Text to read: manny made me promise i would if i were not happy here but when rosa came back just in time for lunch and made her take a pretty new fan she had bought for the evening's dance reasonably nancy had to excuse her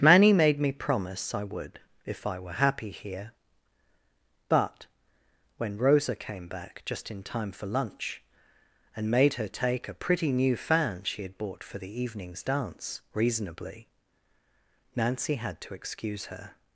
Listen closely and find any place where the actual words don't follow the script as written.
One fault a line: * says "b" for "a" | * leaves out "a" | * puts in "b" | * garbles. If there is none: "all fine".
* leaves out "not"